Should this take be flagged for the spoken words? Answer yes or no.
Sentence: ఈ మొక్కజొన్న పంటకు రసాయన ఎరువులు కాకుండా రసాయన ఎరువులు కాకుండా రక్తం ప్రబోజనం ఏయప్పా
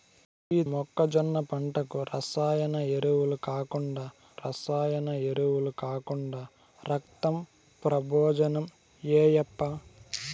no